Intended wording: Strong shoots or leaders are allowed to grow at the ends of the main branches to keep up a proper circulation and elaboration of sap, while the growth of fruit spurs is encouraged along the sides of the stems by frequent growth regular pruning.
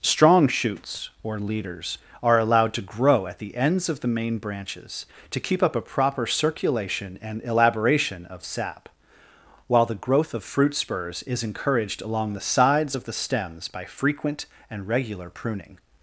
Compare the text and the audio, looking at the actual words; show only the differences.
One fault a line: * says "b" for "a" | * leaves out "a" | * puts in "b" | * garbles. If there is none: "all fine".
* says "and" for "growth"